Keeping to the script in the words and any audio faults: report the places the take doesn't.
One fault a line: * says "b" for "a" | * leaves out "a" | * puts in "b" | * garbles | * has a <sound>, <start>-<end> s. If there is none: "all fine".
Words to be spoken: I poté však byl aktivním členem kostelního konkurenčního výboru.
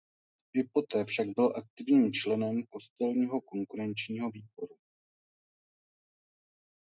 all fine